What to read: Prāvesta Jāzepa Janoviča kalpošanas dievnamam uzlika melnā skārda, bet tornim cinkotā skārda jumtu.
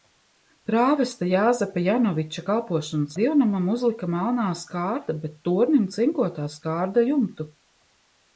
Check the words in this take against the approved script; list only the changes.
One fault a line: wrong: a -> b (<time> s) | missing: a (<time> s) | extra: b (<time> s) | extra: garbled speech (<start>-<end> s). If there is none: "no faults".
no faults